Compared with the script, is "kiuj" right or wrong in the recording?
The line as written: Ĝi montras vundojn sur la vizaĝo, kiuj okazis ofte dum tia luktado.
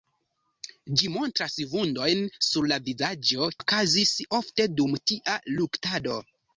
wrong